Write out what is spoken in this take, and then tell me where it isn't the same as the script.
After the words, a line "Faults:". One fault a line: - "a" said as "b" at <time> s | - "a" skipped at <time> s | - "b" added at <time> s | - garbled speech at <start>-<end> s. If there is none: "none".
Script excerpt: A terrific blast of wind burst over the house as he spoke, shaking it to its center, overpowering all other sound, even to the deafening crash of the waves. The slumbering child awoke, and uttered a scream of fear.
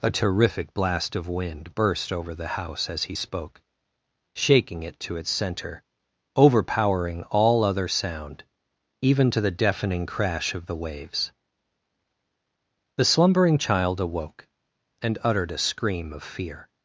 A terrific blast of wind burst over the house as he spoke, shaking it to its center, overpowering all other sound, even to the deafening crash of the waves. The slumbering child awoke, and uttered a scream of fear.
Faults:
none